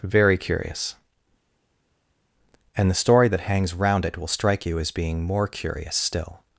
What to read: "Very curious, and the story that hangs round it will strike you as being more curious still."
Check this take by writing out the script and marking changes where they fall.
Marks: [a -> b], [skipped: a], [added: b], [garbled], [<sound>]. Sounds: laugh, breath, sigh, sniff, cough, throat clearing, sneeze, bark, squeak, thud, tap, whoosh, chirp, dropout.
"Very curious, and the story that hangs round it will strike you as being more curious still."